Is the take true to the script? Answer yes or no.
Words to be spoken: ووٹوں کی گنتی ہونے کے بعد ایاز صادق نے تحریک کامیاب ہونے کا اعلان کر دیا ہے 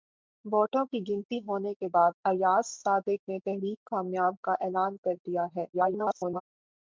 no